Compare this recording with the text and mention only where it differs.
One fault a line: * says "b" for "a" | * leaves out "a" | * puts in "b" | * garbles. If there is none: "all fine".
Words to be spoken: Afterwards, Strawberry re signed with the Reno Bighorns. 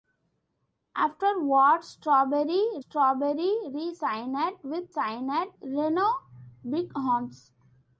* puts in "Strawberry"
* says "signed" for "the"